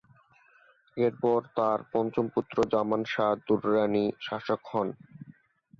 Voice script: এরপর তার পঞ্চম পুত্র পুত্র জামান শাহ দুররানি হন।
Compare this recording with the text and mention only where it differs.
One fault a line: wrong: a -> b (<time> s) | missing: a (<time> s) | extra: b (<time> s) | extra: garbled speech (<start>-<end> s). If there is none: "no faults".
missing: পুত্র (2.6 s)
extra: শাসক (4.2 s)